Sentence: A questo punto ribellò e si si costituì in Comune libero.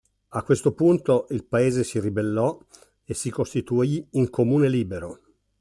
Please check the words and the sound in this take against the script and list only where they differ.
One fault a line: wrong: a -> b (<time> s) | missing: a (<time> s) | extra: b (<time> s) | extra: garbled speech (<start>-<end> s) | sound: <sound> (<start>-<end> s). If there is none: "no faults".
extra: il paese si (1.3 s)
missing: si (3.3 s)